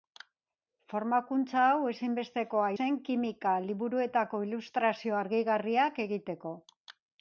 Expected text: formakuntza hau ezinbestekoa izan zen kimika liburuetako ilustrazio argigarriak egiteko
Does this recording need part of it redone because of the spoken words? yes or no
yes